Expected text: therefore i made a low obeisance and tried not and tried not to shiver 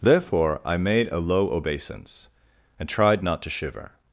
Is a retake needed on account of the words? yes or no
yes